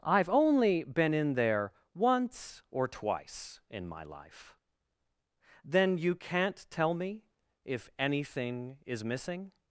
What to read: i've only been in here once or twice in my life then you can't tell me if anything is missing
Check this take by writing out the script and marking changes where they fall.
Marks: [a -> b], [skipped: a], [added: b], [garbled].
i've only been in [here -> there] once or twice in my life then you can't tell me if anything is missing